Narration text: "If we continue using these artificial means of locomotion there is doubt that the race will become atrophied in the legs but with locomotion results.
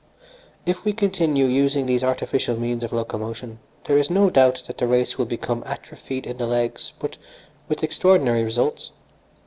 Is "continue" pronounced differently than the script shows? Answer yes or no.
no